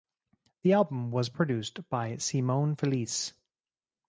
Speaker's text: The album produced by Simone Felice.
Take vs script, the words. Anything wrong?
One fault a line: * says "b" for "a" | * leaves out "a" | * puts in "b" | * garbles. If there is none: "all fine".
* puts in "was"